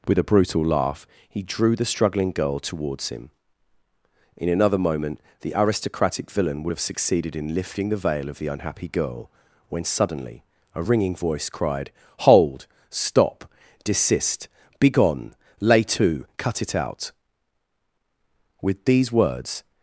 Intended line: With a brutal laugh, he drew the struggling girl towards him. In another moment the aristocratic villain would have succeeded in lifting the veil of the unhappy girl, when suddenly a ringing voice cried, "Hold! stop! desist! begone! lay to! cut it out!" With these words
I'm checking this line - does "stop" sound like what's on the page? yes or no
yes